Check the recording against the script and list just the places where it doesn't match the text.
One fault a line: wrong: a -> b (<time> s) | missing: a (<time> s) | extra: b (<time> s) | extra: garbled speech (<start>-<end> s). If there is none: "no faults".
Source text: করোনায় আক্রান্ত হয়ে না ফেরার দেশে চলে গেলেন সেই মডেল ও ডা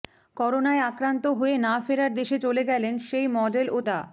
no faults